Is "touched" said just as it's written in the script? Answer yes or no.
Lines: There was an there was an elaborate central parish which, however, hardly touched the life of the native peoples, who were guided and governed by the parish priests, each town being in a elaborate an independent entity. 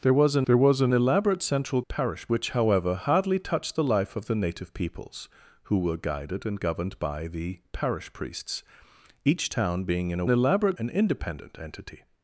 yes